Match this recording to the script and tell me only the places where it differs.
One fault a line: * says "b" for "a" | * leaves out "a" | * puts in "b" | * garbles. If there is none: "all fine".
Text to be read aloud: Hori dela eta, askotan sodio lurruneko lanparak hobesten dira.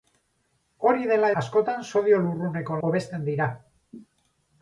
* leaves out "eta"
* leaves out "lanparak"